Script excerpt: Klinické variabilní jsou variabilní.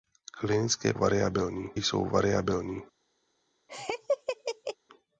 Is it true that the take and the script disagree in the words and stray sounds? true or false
true